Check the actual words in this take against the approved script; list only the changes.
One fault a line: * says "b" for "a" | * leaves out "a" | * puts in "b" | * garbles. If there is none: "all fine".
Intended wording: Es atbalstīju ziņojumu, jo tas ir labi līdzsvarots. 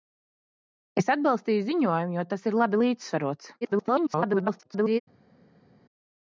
* garbles